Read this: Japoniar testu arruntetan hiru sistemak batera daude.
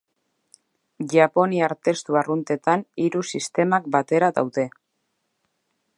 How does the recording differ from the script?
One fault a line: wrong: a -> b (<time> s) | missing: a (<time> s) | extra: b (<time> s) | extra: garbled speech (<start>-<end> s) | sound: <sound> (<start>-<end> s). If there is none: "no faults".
no faults